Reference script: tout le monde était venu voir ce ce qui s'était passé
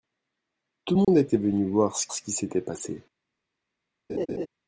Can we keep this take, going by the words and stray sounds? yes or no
no